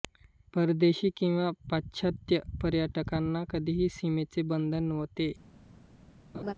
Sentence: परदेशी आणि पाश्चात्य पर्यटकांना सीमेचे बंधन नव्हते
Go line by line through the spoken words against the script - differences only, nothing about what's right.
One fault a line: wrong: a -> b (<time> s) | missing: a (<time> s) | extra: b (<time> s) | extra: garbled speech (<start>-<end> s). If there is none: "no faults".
wrong: आणि -> किंवा (1.2 s)
extra: कधीही (3.5 s)